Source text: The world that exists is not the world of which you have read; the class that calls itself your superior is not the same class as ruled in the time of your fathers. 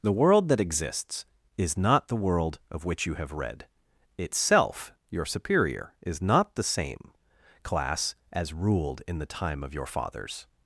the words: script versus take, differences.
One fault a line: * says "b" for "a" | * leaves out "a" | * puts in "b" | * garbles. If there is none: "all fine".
* leaves out "the class that calls"